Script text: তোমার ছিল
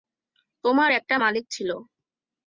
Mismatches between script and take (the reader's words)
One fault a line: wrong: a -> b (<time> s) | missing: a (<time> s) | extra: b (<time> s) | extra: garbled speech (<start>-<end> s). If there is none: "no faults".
extra: একটা মালিক (0.9 s)